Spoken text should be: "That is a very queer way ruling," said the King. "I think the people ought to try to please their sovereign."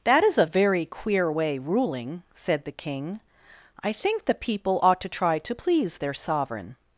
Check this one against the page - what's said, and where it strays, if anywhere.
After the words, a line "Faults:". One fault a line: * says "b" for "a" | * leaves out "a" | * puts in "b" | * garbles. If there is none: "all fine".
"That is a very queer way ruling," said the King. "I think the people ought to try to please their sovereign."
Faults:
all fine